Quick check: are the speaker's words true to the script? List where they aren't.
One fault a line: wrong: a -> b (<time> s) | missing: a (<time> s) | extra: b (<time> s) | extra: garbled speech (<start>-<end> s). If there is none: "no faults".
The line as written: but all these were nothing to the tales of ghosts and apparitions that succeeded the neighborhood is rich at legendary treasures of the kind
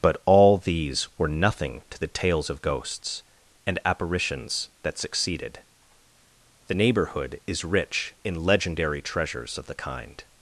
wrong: at -> in (8.2 s)